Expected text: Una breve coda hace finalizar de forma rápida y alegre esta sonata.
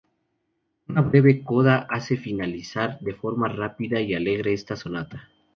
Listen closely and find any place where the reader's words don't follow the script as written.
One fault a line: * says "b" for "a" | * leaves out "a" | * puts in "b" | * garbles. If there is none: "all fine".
all fine